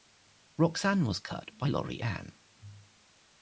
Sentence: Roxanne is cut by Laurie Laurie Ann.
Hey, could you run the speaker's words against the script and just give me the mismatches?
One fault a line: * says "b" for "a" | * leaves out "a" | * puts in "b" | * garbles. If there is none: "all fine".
* says "was" for "is"
* leaves out "Laurie"